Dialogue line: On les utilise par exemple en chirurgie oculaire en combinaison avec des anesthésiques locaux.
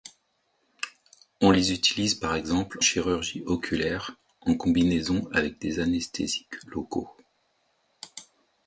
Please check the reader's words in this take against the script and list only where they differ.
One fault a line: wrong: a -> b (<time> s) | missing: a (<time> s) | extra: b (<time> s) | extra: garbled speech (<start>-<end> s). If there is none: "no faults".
missing: en (2.8 s)